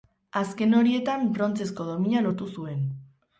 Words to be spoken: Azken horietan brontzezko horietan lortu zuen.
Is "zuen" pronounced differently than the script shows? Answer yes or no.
no